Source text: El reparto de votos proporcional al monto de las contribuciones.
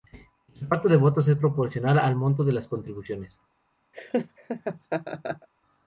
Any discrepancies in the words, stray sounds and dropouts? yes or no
yes